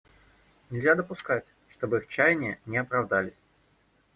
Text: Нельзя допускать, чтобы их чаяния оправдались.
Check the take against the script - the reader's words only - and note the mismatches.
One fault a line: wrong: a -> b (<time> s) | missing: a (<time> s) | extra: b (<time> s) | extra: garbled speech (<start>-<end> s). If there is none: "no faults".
extra: не (2.6 s)